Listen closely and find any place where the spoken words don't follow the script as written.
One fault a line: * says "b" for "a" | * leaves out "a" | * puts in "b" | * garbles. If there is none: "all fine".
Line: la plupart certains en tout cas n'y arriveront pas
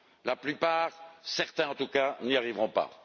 all fine